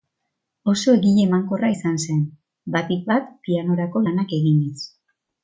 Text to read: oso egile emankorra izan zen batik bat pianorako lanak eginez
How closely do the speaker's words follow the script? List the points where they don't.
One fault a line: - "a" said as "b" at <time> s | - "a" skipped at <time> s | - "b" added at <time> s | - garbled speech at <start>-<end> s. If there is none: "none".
none